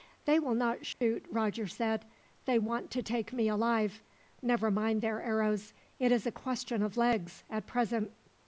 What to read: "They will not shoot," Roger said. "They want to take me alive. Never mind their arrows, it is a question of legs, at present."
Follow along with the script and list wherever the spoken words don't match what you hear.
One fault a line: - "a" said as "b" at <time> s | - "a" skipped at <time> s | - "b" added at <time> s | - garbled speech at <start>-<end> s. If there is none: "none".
none